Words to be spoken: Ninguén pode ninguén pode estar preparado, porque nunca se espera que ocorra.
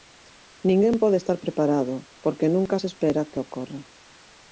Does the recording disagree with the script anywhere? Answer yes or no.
yes